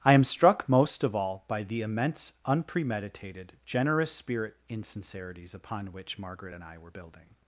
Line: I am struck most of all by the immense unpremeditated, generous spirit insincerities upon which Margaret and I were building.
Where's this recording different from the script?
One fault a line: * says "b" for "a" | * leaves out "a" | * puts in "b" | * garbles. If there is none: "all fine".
all fine